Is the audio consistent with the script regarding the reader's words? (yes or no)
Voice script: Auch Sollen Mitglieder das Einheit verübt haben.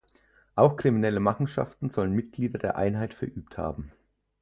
no